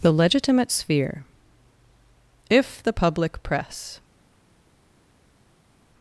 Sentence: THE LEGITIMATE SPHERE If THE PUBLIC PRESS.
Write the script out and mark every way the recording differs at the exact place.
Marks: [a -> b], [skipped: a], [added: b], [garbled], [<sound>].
THE LEGITIMATE SPHERE If THE PUBLIC PRESS.